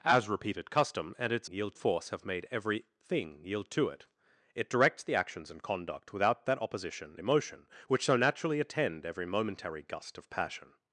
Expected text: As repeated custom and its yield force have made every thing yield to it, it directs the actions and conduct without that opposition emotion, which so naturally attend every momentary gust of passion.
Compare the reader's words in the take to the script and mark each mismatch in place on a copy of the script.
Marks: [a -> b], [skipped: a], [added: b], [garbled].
As repeated custom and its yield force have made every thing yield to it, it directs the actions and conduct without that opposition emotion, which so naturally attend every momentary gust of passion.